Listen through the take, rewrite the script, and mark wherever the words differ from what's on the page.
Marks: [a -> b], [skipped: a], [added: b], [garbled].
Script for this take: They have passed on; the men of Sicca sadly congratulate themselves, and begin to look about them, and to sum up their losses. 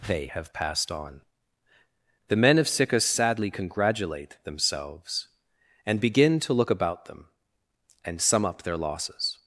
They have passed on; the men of Sicca sadly congratulate themselves, and begin to look about them, and [skipped: to] sum up their losses.